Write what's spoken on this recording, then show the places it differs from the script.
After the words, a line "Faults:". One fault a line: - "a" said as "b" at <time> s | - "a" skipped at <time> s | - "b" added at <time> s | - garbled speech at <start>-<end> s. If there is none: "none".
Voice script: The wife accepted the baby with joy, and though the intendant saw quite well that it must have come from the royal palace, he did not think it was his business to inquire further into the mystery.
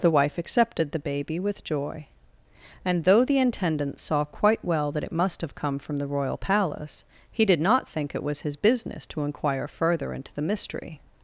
The wife accepted the baby with joy, and though the intendant saw quite well that it must have come from the royal palace, he did not think it was his business to inquire further into the mystery.
Faults:
none